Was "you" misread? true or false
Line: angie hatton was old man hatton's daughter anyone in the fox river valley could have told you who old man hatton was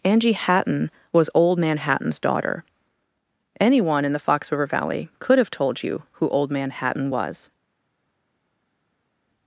false